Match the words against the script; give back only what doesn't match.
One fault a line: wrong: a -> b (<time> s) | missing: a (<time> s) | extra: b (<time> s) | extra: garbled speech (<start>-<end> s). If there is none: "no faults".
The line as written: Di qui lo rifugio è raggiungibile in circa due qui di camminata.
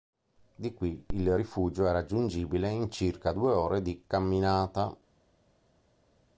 wrong: lo -> il (1.1 s)
wrong: qui -> ore (3.5 s)